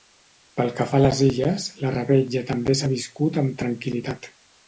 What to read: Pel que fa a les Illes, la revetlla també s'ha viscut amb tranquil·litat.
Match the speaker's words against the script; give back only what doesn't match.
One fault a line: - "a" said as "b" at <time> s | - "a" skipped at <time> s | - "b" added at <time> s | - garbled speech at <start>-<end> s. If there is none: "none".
none